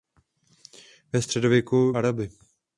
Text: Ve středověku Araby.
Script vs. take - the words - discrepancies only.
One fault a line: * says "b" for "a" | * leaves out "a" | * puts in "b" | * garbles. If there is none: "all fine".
all fine